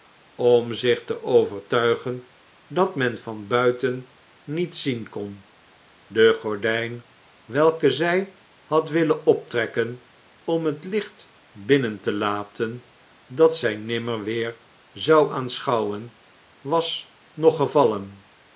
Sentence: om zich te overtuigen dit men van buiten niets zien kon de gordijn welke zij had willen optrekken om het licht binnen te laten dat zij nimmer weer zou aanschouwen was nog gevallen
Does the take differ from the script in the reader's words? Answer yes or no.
yes